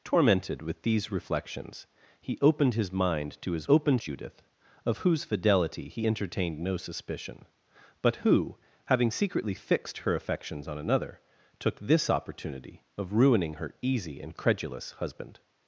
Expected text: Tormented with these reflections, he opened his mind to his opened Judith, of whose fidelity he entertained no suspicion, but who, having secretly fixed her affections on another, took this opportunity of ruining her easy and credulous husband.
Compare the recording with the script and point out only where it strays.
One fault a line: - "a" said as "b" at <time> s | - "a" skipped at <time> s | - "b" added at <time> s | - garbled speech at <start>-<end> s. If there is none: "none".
none